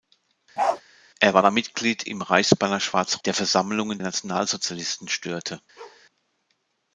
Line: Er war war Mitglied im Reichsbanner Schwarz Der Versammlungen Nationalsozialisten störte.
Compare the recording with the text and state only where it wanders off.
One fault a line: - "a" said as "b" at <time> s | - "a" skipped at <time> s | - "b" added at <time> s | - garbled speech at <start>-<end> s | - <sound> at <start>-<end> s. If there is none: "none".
- bark at 0.6-0.8 s
- bark at 5.8-6.1 s